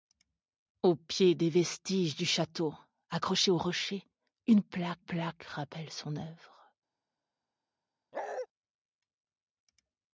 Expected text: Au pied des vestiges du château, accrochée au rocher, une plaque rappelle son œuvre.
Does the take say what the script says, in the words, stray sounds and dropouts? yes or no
no